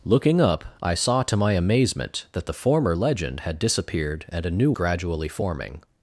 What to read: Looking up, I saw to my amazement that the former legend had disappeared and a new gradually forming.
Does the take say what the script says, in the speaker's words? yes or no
yes